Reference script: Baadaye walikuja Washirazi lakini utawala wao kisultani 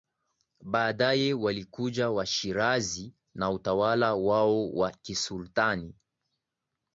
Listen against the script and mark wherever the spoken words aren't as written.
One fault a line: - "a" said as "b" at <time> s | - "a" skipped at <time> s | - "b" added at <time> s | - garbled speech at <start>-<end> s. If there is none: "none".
- "lakini" said as "na" at 3.3 s
- "wa" added at 4.7 s